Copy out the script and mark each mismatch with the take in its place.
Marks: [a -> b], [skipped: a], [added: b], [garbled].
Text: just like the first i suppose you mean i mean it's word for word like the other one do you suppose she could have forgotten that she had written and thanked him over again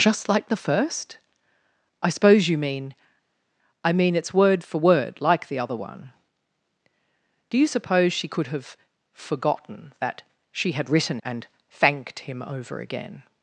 just like the first i suppose you mean i mean it's word for word like the other one do you suppose she could have forgotten that she had written and thanked him over again